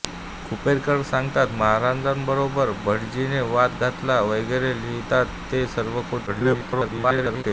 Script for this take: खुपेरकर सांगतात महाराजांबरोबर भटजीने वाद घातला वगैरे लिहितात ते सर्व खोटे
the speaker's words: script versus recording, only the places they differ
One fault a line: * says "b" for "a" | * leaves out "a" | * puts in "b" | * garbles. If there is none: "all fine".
* garbles